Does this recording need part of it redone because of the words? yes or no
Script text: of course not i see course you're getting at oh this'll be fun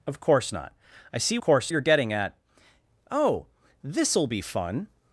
no